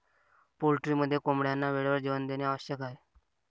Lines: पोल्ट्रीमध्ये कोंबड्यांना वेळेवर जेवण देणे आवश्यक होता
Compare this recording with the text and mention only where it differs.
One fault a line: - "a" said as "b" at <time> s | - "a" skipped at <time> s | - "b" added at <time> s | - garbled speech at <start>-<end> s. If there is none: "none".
- "होता" said as "आहे" at 2.8 s